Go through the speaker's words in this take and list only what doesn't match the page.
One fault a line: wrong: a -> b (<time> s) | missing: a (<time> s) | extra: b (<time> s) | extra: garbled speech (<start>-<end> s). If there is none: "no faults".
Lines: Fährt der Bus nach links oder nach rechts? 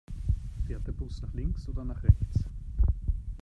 no faults